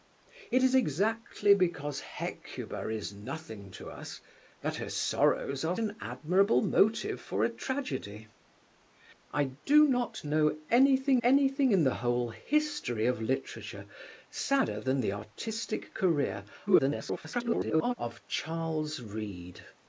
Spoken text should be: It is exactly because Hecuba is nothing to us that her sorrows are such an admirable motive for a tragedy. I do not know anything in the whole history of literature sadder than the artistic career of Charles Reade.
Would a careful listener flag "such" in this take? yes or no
yes